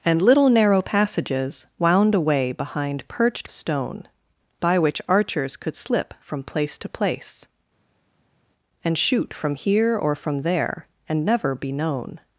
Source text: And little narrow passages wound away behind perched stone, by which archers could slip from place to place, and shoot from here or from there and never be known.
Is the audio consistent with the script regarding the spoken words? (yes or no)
yes